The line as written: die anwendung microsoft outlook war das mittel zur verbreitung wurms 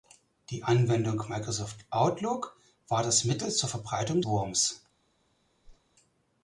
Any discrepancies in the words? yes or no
no